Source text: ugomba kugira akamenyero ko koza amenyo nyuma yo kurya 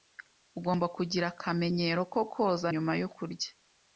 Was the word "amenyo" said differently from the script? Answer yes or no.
yes